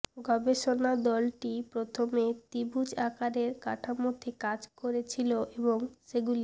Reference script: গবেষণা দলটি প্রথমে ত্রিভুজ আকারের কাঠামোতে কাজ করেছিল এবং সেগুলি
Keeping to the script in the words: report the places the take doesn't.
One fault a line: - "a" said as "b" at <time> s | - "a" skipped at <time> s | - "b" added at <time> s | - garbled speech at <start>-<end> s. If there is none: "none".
none